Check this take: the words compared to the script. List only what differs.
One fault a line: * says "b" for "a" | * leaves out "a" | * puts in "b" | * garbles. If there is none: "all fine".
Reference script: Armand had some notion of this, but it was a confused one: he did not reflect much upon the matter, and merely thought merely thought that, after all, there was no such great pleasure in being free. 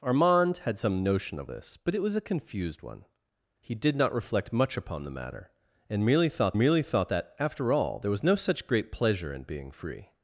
all fine